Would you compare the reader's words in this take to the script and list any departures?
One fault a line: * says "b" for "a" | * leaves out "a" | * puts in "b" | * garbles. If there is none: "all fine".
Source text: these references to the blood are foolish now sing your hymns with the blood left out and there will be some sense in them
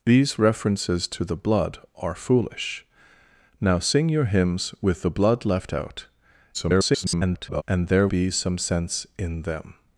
* garbles
* leaves out "will"